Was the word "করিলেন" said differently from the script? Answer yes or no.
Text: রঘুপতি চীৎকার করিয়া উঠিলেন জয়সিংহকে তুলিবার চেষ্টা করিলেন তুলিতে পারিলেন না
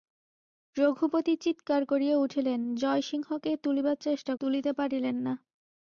yes